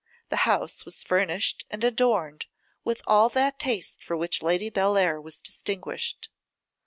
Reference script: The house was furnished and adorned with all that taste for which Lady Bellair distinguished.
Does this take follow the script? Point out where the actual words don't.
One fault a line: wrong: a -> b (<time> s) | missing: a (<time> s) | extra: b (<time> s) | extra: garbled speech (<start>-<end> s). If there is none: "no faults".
extra: was (5.2 s)